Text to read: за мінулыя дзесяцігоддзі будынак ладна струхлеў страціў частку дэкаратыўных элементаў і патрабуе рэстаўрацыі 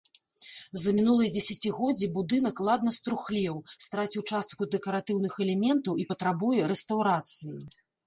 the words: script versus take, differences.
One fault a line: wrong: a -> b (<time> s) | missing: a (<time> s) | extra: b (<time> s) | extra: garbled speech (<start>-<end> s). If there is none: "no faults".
no faults